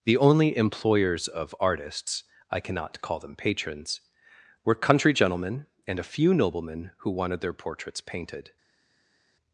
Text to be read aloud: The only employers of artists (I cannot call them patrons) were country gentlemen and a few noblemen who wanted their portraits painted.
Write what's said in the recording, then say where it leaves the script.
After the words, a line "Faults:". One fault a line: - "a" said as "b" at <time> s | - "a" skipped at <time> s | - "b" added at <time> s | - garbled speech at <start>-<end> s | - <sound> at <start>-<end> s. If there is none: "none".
The only employers of artists (I cannot call them patrons) were country gentlemen and a few noblemen who wanted their portraits painted.
Faults:
none